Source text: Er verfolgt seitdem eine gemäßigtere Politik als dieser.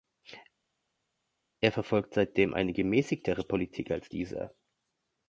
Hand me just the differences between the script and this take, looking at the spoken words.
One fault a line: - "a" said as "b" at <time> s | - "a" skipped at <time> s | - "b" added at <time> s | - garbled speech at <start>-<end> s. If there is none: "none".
none